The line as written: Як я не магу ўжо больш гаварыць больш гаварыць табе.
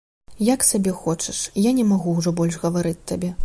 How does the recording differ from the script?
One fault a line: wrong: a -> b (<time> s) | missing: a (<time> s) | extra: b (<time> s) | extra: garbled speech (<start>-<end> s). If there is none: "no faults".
extra: сабе хочаш (0.7 s)
missing: больш гаварыць (3.0 s)